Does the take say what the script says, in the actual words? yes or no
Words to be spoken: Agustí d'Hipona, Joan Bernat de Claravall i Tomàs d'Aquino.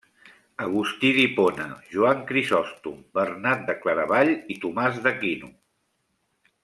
no